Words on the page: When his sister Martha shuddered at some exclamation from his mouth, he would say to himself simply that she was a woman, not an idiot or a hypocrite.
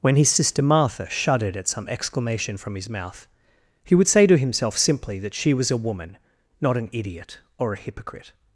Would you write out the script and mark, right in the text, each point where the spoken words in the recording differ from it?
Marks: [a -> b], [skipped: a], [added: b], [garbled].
When his sister Martha shuddered at some exclamation from his mouth, he would say to himself simply that she was a woman, not an idiot or a hypocrite.